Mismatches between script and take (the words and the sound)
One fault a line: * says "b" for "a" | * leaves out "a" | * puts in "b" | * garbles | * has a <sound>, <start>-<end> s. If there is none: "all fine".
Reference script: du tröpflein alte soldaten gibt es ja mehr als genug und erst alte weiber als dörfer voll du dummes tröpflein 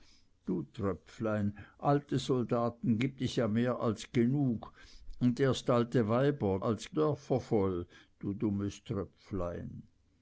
all fine